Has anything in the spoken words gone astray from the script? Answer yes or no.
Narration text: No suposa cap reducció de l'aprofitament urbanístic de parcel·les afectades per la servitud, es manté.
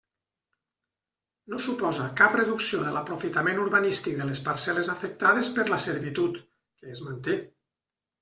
yes